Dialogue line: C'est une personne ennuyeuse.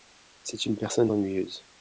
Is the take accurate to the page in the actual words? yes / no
yes